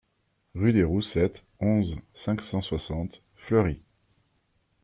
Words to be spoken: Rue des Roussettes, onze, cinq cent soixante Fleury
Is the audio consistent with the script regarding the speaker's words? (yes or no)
yes